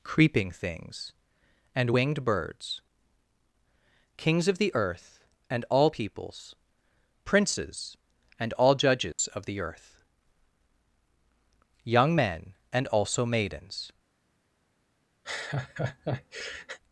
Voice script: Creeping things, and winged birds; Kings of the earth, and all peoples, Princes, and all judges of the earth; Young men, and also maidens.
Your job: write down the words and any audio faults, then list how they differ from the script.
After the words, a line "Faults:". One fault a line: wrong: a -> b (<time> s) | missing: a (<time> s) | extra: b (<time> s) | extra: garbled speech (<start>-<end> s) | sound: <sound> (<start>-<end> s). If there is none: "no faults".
Creeping things, and winged birds; Kings of the earth, and all peoples, Princes, and all judges of the earth; Young men, and also maidens.
Faults:
sound: dropout (9.1-9.2 s)
sound: laugh (15.2-16.8 s)